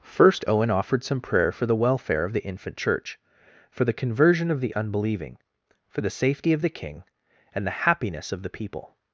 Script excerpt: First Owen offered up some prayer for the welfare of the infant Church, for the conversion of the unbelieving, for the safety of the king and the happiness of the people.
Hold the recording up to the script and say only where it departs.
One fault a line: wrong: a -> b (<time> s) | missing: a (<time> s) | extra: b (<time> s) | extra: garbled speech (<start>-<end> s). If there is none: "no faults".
missing: up (1.0 s)